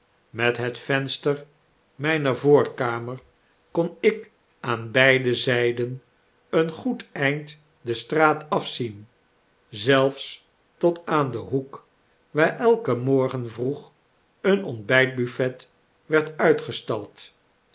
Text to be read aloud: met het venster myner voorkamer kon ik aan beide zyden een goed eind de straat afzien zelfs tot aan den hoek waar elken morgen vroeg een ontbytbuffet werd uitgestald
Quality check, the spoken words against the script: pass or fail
pass